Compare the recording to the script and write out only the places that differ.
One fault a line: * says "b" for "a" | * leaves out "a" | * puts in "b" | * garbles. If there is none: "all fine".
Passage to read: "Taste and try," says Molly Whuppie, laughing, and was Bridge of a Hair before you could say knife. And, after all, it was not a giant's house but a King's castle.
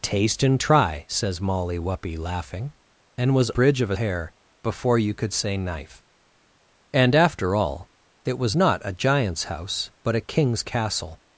all fine